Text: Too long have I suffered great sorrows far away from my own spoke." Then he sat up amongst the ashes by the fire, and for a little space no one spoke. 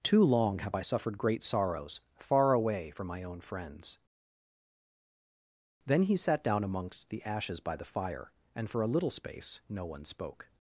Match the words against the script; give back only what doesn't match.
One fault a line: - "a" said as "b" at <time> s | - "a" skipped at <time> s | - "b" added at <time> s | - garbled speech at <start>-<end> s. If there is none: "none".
- "spoke" said as "friends" at 3.4 s
- "up" said as "down" at 6.4 s